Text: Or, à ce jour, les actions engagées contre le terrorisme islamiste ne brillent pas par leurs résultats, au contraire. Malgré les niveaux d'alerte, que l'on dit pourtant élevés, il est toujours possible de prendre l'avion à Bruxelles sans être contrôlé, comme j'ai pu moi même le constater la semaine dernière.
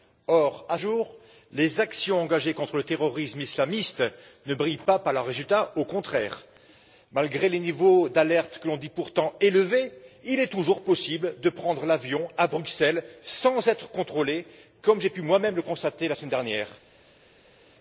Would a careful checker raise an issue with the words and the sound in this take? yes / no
yes